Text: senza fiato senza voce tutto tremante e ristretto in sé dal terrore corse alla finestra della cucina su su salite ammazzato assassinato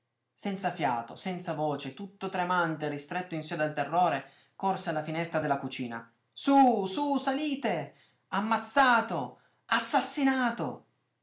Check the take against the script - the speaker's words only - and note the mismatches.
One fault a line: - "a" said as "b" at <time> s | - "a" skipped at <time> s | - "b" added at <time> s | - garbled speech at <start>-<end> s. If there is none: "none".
none